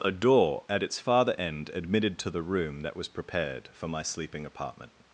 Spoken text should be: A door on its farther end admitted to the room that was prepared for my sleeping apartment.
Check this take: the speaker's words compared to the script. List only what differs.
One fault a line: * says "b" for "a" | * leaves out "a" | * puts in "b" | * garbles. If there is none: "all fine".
* says "at" for "on"